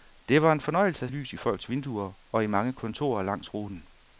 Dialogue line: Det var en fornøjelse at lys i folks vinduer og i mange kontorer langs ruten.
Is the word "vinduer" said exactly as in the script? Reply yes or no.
yes